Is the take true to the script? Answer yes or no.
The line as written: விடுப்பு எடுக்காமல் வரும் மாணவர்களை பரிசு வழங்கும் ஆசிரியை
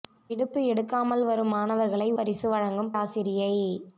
yes